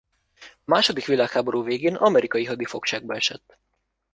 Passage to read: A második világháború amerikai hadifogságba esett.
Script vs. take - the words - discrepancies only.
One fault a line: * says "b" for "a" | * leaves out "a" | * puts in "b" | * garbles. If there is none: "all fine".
* puts in "végén"